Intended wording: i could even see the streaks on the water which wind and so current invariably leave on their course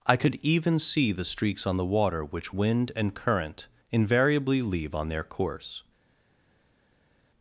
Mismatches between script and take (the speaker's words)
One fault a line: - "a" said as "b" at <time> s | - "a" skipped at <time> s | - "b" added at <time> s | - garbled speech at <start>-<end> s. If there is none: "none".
- "so" skipped at 3.1 s